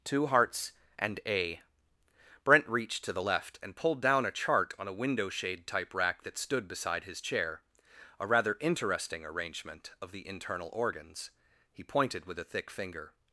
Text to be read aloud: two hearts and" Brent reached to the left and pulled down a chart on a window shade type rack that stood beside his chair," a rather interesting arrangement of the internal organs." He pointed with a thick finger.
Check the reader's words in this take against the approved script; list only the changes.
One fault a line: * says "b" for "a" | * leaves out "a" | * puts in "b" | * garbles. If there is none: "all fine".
* puts in "a"